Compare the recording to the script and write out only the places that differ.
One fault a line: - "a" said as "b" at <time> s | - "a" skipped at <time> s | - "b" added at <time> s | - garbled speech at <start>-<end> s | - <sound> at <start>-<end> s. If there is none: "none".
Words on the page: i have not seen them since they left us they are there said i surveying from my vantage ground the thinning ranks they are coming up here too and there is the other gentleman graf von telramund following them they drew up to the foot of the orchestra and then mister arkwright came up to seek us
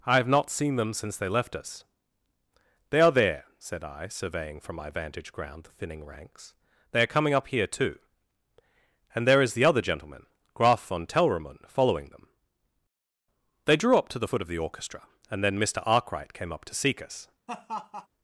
- laugh at 17.5-18.1 s